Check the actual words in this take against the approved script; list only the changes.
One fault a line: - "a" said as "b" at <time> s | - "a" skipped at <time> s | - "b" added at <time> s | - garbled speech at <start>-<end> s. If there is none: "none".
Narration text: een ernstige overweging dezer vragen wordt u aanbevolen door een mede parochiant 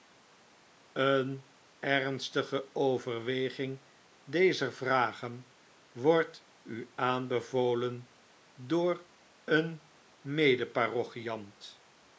none